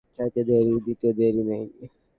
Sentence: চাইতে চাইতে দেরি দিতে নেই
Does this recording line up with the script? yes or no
no